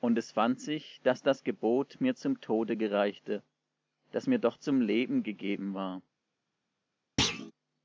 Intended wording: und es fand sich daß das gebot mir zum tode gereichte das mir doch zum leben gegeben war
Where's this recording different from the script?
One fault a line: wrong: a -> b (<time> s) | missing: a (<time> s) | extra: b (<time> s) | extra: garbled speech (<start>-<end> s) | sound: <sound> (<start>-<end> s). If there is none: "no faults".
sound: thud (7.2-7.5 s)